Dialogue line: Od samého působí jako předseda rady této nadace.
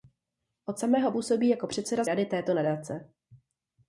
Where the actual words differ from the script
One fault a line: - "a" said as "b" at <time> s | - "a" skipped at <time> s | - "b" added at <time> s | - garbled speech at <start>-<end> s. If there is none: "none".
none